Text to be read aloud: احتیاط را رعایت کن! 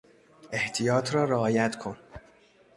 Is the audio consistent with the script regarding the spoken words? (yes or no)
yes